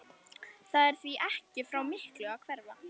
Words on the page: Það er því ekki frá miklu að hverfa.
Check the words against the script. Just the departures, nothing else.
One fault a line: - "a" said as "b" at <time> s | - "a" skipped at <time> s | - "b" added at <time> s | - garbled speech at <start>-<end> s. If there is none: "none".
none